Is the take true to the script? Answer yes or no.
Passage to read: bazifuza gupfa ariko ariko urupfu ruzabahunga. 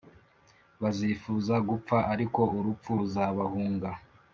no